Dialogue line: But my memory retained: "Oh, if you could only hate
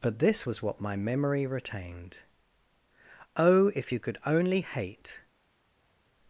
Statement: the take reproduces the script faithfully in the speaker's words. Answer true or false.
false